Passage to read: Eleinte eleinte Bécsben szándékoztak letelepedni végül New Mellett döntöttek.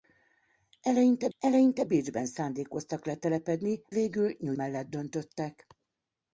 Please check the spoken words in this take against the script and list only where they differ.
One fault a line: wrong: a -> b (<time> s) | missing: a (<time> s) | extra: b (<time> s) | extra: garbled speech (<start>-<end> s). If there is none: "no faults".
no faults